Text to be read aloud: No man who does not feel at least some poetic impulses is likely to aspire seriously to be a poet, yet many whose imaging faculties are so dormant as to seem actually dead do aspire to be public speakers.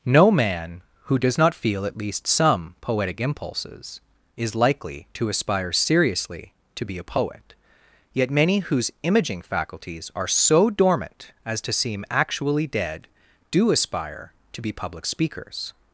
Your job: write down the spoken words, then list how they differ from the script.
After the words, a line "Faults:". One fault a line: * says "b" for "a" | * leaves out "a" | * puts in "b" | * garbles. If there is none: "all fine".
No man who does not feel at least some poetic impulses is likely to aspire seriously to be a poet, yet many whose imaging faculties are so dormant as to seem actually dead do aspire to be public speakers.
Faults:
all fine